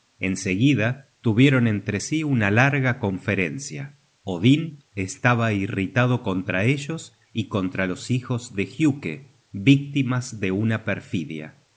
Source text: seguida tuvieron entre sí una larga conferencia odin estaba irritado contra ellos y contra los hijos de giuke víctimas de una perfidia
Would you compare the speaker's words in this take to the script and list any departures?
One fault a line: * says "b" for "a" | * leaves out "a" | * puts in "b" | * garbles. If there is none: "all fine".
all fine